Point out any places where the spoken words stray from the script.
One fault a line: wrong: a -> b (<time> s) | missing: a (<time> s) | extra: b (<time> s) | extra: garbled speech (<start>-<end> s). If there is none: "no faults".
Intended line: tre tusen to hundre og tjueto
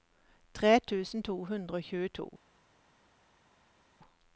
no faults